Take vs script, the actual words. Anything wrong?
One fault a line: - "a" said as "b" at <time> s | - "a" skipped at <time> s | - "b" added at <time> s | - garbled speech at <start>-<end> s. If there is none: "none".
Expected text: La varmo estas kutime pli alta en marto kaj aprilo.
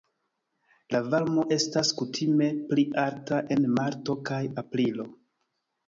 none